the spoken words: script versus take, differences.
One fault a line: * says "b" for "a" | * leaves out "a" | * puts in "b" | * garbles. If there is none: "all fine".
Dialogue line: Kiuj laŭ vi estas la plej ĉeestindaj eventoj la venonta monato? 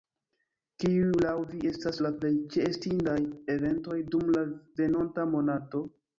* puts in "dum"